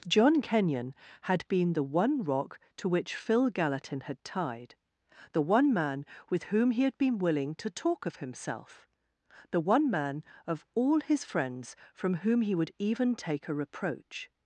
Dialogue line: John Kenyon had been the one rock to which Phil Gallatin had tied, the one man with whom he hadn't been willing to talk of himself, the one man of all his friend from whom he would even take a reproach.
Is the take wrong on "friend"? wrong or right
wrong